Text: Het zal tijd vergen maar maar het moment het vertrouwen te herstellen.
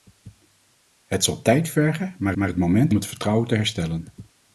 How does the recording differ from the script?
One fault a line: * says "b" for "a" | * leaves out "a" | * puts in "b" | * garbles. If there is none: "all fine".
all fine